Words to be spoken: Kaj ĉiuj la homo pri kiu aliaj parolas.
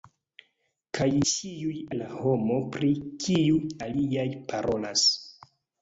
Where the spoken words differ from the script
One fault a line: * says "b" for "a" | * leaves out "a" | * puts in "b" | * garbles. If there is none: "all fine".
all fine